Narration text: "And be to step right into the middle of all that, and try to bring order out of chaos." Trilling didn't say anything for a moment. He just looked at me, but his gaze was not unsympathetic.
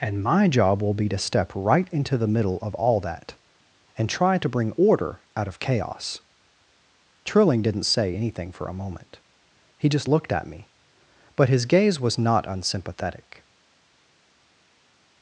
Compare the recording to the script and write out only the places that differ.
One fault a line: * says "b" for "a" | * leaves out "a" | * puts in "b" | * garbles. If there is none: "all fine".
* puts in "my job will"